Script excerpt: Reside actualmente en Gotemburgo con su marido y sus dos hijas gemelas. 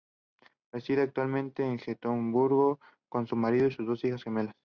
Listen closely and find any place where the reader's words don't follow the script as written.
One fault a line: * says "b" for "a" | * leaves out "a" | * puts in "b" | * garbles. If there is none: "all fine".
all fine